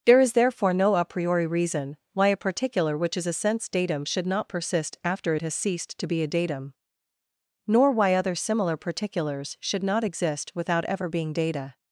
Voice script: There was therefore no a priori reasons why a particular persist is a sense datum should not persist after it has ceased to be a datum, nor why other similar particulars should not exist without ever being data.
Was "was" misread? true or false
true